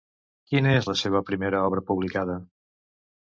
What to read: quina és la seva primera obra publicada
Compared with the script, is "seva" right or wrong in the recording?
right